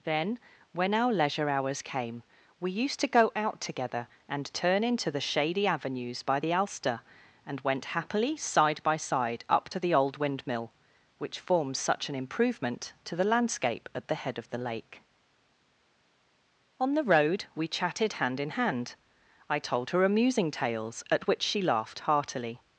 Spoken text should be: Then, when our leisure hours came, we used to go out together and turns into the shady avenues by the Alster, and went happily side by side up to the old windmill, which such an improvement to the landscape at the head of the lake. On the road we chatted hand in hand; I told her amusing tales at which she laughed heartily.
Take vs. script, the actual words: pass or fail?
fail